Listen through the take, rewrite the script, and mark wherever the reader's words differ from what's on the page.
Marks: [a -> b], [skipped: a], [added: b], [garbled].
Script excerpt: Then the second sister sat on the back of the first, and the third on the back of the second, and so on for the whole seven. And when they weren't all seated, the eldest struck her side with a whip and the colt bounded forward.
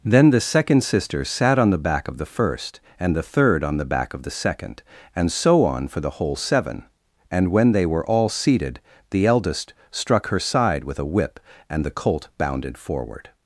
Then the second sister sat on the back of the first, and the third on the back of the second, and so on for the whole seven. And when they [weren't -> were] all seated, the eldest struck her side with a whip and the colt bounded forward.